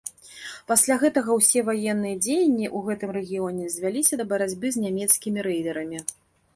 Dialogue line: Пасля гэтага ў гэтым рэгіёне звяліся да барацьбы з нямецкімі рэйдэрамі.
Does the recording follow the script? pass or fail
fail